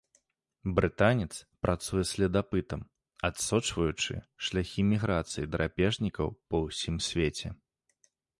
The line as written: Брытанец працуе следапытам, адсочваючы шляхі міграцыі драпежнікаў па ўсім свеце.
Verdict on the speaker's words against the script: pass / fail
pass